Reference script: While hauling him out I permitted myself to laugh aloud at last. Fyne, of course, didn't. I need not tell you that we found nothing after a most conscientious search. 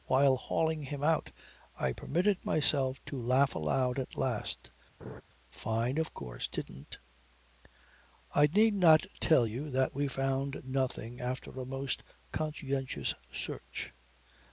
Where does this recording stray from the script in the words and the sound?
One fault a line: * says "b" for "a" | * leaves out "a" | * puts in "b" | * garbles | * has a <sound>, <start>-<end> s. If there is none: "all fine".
* has a laugh, 5.0-5.2 s